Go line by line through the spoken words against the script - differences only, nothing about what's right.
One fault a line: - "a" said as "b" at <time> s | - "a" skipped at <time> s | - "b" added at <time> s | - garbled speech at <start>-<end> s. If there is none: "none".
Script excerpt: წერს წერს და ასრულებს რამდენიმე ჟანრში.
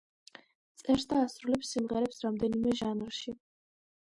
- "წერს" skipped at 1.1 s
- "სიმღერებს" added at 1.8 s